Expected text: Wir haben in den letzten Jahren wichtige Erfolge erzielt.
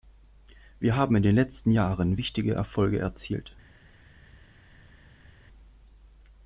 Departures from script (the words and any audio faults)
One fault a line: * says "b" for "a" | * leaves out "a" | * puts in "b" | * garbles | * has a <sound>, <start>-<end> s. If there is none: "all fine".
all fine